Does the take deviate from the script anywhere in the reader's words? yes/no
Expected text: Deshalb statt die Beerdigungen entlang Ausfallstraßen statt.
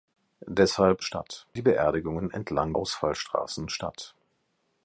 no